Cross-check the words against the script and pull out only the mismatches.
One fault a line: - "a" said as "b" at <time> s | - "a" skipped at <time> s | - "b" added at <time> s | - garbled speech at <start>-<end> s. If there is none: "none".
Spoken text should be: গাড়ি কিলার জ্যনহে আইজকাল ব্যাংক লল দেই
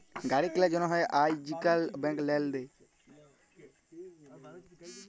none